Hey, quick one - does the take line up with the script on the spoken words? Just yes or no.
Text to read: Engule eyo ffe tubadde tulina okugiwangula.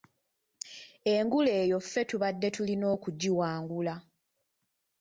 yes